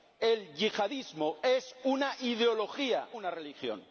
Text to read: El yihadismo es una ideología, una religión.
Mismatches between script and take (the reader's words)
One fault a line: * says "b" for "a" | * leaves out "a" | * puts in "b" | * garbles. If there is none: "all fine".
all fine